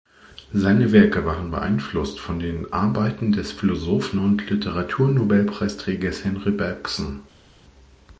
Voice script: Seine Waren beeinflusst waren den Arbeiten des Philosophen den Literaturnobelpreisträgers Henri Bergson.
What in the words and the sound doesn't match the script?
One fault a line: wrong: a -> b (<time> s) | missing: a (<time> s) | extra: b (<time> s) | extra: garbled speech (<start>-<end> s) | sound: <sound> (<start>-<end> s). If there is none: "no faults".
extra: Werke (0.9 s)
wrong: waren -> von (2.2 s)
wrong: den -> und (4.2 s)